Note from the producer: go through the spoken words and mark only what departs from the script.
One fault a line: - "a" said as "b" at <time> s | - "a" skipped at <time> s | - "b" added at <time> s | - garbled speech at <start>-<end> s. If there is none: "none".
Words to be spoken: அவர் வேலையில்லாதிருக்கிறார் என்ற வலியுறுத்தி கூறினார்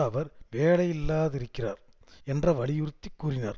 none